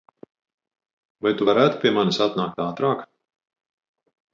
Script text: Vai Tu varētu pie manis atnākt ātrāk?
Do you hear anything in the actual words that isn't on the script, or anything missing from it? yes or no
no